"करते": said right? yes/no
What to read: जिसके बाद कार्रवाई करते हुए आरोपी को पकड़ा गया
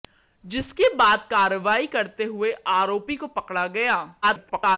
yes